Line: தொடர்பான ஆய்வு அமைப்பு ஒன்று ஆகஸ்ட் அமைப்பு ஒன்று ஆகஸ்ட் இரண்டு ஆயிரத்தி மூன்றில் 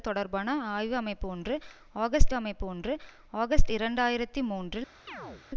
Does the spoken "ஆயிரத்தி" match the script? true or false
true